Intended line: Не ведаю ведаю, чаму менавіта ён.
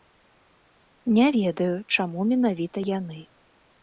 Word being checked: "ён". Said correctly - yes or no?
no